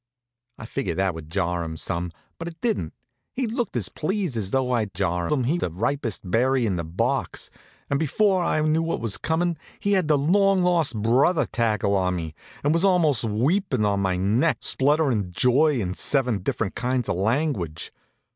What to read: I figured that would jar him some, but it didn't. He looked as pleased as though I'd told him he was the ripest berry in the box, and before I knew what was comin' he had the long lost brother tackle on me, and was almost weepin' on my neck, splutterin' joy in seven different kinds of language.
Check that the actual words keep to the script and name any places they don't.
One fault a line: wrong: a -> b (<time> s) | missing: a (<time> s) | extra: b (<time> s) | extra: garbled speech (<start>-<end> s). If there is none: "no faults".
wrong: told -> jar (4.9 s)
missing: was (5.6 s)